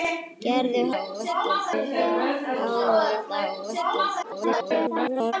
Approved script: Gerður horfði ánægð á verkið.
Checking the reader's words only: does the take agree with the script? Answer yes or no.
no